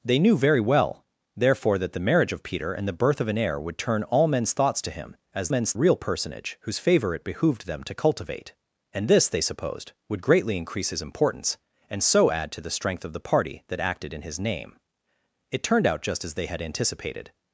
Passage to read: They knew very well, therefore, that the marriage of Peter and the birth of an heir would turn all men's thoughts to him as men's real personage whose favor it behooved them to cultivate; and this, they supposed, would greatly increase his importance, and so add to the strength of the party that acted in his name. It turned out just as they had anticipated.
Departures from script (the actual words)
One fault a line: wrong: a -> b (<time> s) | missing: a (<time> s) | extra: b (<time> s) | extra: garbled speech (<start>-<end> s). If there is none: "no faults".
no faults